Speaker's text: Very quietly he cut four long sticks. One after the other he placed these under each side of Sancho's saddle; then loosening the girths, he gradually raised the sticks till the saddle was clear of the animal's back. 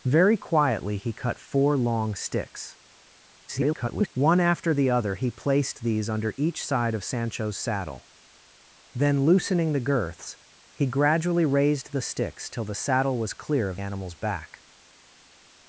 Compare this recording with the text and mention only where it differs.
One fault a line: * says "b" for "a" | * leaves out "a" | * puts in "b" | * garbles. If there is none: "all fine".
* garbles
* leaves out "the"